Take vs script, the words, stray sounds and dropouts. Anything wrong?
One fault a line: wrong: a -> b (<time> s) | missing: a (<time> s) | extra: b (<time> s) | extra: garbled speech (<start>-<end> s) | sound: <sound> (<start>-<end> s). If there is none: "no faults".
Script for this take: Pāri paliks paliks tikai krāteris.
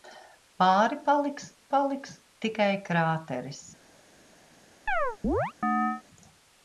sound: chirp (4.9-6.0 s)